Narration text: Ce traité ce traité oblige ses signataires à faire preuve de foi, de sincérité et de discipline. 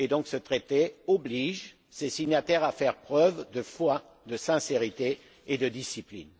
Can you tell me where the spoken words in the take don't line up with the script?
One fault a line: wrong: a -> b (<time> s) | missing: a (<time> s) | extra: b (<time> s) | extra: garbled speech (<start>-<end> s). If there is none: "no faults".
missing: ce traité (0.9 s)